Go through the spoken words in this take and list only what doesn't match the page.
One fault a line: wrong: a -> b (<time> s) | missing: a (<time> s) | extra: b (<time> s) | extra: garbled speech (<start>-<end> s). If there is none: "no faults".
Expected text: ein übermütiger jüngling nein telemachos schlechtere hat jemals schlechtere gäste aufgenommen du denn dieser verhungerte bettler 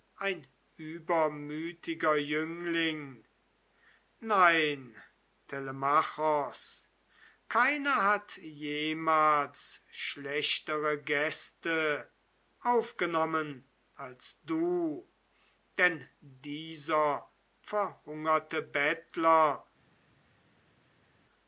wrong: schlechtere -> keiner (7.5 s)
extra: als (13.9 s)